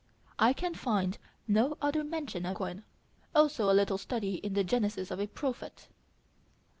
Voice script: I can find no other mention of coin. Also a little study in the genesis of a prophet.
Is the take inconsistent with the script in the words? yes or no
no